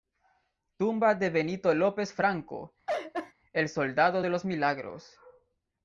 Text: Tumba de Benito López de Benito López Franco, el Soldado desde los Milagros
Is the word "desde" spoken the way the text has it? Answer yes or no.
no